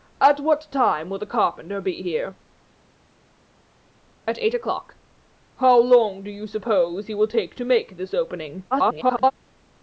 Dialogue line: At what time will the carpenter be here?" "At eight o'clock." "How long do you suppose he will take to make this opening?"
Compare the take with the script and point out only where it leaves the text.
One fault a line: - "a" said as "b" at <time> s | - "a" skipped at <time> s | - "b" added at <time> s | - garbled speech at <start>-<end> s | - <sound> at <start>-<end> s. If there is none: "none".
- garbled speech at 8.7-9.3 s